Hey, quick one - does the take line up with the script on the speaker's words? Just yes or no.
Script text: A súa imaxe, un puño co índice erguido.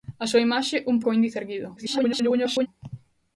no